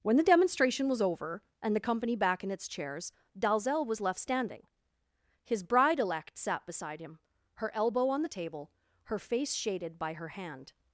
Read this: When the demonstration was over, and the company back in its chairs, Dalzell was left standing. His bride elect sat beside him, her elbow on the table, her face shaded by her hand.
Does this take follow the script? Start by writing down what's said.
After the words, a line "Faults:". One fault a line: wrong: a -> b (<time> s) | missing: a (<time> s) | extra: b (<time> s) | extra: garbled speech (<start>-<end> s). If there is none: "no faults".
When the demonstration was over, and the company back in its chairs, Dalzell was left standing. His bride elect sat beside him, her elbow on the table, her face shaded by her hand.
Faults:
no faults